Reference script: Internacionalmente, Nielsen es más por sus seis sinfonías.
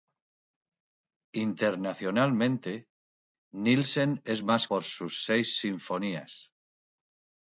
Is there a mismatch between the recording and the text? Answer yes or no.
no